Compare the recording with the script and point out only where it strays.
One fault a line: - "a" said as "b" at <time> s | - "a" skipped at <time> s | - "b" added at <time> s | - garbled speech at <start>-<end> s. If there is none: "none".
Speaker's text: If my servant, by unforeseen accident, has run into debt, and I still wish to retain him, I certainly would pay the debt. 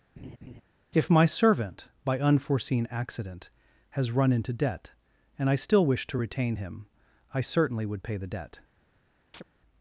none